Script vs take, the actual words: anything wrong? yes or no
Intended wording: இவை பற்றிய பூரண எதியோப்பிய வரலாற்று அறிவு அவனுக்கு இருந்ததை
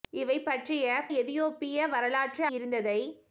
yes